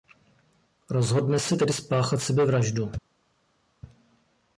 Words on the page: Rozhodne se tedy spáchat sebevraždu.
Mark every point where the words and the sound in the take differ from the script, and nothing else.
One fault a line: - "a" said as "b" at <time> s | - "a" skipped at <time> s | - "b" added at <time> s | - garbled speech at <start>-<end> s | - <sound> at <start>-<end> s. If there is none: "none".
none